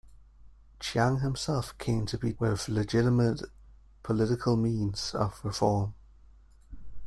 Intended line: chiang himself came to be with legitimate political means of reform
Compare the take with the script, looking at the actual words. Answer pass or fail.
pass